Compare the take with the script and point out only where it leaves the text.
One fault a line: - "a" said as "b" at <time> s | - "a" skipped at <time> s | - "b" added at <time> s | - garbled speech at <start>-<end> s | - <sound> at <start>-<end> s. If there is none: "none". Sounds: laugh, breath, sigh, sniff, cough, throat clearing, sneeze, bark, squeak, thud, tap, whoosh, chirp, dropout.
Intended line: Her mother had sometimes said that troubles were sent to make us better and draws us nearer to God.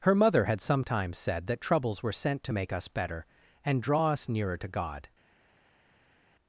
- "draws" said as "draw" at 3.8 s